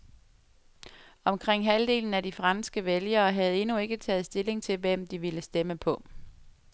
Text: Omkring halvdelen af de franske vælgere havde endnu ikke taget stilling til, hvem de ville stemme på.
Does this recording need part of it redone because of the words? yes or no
no